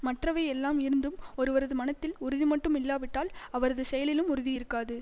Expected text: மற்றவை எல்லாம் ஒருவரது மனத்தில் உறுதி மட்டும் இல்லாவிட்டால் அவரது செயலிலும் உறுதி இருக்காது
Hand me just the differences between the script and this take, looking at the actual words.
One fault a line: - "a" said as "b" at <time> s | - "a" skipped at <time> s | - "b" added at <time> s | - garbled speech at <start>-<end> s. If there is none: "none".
- "இருந்தும்" added at 0.8 s